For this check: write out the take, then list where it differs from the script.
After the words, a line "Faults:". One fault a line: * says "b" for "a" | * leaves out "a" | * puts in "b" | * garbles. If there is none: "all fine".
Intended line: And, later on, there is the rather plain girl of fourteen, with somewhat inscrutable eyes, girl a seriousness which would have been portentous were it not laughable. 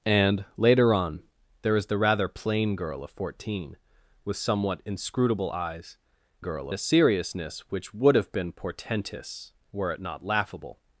And, later on, there is the rather plain girl of fourteen, with somewhat inscrutable eyes, girl a seriousness which would have been portentous were it not laughable.
Faults:
all fine